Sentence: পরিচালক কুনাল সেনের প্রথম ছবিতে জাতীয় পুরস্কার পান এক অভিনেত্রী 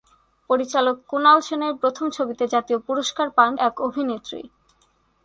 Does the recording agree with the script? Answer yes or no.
yes